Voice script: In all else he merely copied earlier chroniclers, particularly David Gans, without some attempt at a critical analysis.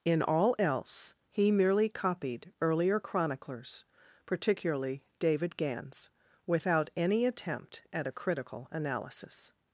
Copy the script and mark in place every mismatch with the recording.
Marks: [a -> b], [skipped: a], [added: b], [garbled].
In all else he merely copied earlier chroniclers, particularly David Gans, without [some -> any] attempt at a critical analysis.